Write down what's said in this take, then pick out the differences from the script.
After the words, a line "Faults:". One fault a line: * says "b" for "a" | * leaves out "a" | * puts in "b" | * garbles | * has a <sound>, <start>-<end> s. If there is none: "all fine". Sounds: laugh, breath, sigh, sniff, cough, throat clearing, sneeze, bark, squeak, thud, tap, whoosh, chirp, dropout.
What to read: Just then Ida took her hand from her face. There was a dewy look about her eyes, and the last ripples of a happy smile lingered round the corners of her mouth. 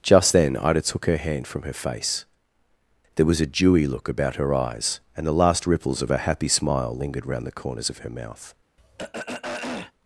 Just then Ida took her hand from her face. There was a dewy look about her eyes, and the last ripples of a happy smile lingered round the corners of her mouth.
Faults:
* has a throat clearing, 8.8-9.9 s